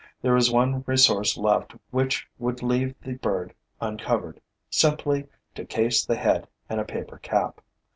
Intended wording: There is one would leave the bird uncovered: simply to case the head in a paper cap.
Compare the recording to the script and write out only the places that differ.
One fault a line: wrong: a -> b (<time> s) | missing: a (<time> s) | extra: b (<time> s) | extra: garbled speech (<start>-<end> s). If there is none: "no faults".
extra: resource left which (0.9 s)